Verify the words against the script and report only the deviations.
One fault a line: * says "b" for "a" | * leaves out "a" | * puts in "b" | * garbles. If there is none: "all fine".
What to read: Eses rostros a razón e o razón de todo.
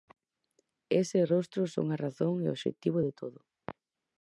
* puts in "son"
* says "obxectivo" for "razón"